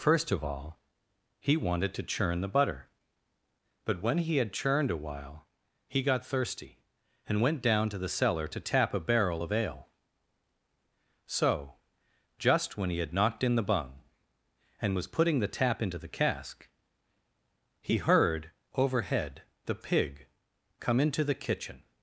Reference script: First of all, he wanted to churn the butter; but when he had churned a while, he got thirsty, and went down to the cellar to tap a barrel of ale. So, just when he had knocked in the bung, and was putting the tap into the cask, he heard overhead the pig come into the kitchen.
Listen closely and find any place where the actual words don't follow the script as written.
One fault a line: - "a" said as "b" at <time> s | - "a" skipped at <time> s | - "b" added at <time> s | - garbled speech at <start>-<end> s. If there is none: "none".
none